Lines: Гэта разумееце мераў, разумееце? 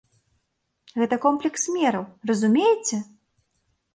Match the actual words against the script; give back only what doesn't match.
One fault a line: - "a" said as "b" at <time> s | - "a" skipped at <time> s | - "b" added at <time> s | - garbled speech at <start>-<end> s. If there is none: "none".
- "разумееце" said as "комплекс" at 1.2 s